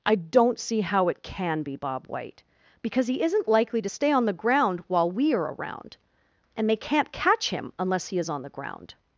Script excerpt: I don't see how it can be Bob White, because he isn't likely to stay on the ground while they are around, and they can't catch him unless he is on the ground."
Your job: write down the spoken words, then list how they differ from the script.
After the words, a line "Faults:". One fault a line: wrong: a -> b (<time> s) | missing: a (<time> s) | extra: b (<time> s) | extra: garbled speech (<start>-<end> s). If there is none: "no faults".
I don't see how it can be Bob White, because he isn't likely to stay on the ground while we are around, and they can't catch him unless he is on the ground."
Faults:
wrong: they -> we (5.1 s)